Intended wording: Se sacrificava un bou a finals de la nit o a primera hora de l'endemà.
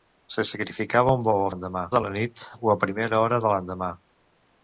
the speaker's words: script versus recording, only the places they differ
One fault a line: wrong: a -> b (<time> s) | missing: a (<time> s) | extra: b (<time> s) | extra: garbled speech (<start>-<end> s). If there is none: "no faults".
wrong: finals -> l'endemà (1.5 s)